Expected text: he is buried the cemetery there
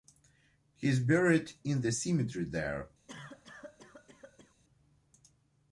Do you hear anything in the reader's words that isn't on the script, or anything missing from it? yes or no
yes